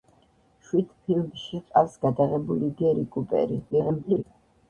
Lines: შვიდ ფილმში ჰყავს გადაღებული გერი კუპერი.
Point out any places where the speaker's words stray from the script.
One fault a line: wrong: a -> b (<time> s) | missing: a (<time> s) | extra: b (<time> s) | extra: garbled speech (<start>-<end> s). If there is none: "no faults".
extra: garbled speech (3.7-4.2 s)